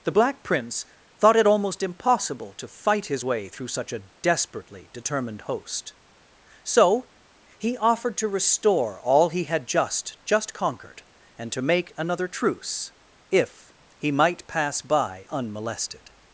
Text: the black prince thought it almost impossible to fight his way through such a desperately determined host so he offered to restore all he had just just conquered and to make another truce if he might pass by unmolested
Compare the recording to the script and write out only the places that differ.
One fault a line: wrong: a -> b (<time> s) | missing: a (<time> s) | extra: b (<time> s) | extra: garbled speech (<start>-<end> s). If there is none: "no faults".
no faults